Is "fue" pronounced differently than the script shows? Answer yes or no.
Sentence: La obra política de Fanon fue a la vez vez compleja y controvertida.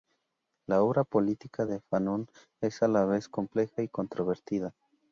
yes